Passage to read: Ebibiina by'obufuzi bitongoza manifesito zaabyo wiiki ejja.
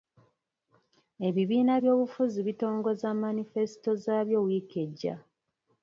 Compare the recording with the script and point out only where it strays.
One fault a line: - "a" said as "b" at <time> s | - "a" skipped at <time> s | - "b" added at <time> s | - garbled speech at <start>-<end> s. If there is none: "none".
none